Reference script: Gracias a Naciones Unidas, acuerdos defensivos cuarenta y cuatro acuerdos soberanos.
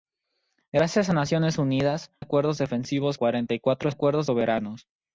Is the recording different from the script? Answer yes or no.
no